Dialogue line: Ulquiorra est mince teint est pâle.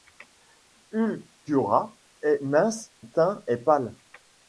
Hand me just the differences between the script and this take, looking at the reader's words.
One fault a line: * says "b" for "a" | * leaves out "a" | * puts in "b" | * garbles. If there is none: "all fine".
all fine